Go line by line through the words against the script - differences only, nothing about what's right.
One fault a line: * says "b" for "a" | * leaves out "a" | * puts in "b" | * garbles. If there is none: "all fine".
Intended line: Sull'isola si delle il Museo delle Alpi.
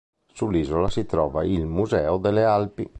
* says "trova" for "delle"